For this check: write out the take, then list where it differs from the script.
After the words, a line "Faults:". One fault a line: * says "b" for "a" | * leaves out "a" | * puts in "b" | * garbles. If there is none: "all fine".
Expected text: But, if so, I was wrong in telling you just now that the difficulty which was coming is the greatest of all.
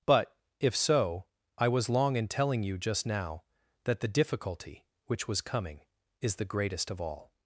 But, if so, I was long in telling you just now that the difficulty which was coming is the greatest of all.
Faults:
* says "long" for "wrong"